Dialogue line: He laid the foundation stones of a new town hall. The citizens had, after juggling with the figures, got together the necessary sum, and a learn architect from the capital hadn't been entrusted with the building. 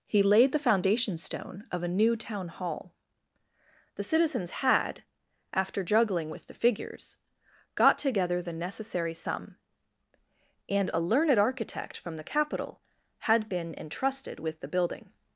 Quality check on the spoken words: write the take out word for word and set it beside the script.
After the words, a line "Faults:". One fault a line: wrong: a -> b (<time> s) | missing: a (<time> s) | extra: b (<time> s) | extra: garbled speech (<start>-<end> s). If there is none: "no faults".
He laid the foundation stone of a new town hall. The citizens had, after juggling with the figures, got together the necessary sum, and a learned architect from the capital had been entrusted with the building.
Faults:
wrong: stones -> stone (1.2 s)
wrong: learn -> learned (11.0 s)
wrong: hadn't -> had (13.2 s)